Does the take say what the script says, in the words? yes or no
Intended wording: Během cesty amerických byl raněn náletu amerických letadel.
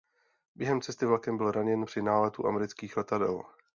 no